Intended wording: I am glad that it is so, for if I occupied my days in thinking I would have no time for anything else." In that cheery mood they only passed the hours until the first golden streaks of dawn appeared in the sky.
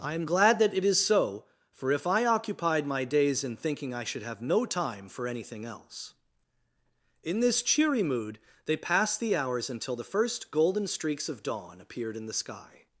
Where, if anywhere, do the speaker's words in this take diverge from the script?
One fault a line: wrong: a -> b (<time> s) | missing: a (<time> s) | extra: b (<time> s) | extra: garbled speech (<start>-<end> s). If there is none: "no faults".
wrong: would -> should (4.0 s)
wrong: that -> this (7.4 s)
missing: only (8.8 s)